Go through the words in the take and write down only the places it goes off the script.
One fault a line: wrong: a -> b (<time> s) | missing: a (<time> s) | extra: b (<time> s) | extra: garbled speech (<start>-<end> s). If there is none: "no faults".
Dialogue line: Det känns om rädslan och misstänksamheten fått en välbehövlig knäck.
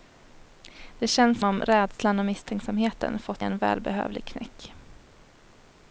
no faults